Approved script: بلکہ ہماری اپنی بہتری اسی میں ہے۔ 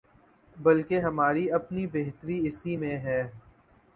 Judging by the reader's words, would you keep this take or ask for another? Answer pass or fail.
pass